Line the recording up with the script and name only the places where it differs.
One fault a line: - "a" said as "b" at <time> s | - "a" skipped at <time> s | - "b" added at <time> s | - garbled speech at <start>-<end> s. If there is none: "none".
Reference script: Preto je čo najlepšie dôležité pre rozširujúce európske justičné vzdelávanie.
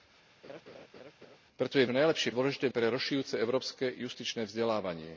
none